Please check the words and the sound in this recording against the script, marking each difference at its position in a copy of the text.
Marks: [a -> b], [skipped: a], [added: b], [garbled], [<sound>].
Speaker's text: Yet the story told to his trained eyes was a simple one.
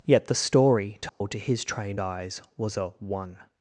Yet the story told [dropout] to his trained eyes was a [skipped: simple] one.